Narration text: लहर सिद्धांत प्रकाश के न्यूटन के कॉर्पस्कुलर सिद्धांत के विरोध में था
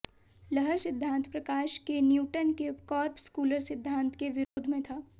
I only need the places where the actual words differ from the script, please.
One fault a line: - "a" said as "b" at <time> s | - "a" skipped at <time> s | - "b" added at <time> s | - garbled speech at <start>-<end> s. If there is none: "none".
none